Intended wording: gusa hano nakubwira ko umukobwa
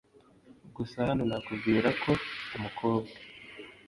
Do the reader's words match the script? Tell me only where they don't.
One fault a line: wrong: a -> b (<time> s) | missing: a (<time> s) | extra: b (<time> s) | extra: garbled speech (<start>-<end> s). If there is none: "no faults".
no faults